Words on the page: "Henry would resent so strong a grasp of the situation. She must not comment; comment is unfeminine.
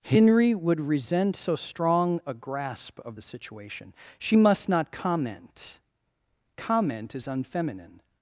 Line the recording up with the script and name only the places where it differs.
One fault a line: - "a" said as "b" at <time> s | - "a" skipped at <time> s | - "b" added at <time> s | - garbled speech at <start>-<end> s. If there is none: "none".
none